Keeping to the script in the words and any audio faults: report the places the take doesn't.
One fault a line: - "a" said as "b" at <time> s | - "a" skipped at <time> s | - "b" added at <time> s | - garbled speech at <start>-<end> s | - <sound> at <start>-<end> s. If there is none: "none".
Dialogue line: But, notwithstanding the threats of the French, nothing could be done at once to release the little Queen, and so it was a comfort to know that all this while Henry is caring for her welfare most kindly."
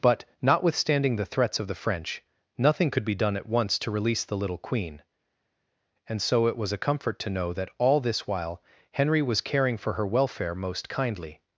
- "is" said as "was" at 9.2 s